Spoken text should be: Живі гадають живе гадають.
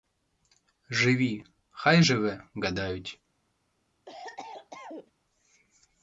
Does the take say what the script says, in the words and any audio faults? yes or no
no